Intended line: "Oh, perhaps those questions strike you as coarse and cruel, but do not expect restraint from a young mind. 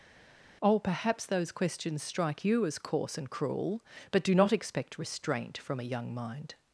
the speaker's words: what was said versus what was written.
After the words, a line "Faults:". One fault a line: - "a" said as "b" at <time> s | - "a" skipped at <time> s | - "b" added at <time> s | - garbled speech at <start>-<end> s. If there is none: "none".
"Oh, perhaps those questions strike you as coarse and cruel, but do not expect restraint from a young mind.
Faults:
none